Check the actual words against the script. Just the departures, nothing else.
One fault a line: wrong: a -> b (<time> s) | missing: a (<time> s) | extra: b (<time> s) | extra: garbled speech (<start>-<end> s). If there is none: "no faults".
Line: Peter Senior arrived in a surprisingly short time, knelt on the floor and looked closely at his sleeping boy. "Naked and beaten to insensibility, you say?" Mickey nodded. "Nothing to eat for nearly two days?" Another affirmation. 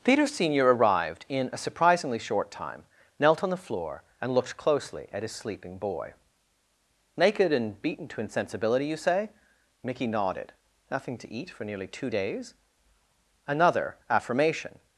no faults